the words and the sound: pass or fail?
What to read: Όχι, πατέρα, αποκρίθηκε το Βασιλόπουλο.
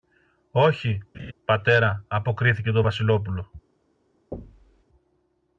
fail